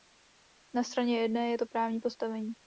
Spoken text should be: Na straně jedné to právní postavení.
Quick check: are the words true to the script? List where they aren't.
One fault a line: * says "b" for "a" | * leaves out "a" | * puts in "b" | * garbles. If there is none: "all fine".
* puts in "je"